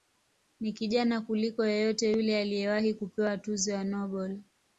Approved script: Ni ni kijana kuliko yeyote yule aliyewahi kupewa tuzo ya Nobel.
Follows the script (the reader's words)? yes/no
no